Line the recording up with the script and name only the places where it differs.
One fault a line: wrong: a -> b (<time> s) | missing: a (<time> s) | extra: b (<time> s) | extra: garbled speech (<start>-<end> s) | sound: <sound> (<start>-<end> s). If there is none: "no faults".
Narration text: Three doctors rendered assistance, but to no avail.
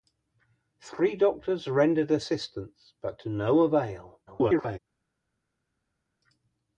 extra: garbled speech (4.3-4.8 s)